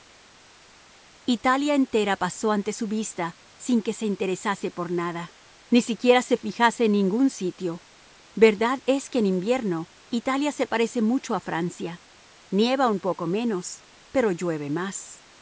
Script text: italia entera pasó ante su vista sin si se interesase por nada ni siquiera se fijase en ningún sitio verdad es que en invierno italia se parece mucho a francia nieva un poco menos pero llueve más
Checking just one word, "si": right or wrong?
wrong